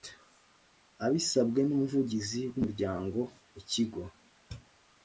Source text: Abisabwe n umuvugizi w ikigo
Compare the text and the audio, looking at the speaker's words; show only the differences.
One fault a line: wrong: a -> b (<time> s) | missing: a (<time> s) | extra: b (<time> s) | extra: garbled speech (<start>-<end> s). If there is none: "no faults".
extra: umuryango (2.6 s)